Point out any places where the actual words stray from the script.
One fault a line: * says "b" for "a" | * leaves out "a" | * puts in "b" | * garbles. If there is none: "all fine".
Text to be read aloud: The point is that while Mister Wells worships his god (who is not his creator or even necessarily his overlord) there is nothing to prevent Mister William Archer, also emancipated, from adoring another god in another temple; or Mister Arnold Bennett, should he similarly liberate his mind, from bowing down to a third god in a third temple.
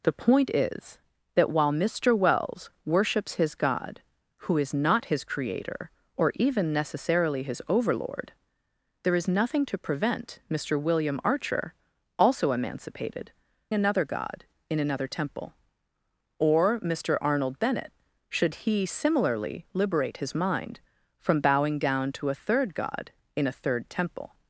* leaves out "from adoring"